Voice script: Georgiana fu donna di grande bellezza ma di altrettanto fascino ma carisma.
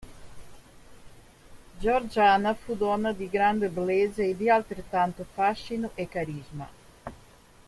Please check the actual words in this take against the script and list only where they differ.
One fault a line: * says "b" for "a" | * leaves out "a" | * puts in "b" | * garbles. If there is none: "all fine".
* says "e" for "ma"
* says "e" for "ma"